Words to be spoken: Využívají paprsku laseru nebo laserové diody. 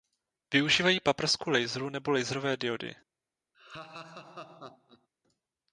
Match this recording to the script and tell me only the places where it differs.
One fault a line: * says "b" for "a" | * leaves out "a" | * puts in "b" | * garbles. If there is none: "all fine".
all fine